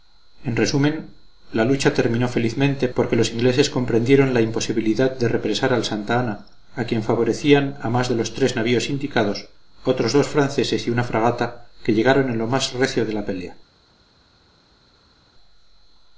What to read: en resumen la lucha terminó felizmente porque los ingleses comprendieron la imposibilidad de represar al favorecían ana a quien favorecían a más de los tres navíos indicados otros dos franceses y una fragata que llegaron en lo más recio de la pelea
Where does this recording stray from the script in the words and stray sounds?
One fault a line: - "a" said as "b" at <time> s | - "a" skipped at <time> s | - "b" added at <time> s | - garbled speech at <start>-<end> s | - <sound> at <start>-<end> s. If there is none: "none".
- "favorecían" said as "santa" at 5.8 s